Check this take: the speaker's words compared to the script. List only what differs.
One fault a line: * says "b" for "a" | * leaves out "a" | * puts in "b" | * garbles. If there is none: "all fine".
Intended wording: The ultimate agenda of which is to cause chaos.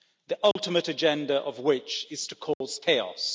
all fine